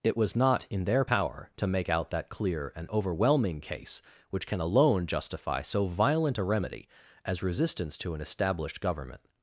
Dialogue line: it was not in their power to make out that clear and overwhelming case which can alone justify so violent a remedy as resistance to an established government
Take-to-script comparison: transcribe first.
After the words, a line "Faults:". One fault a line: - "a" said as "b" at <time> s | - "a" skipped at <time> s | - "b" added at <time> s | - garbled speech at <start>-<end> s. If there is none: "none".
it was not in their power to make out that clear and overwhelming case which can alone justify so violent a remedy as resistance to an established government
Faults:
none